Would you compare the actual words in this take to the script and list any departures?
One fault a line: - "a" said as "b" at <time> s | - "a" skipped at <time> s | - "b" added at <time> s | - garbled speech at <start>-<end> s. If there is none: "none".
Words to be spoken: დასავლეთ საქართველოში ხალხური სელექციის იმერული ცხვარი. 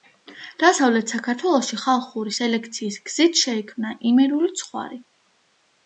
- "გზით შეიქმნა" added at 3.1 s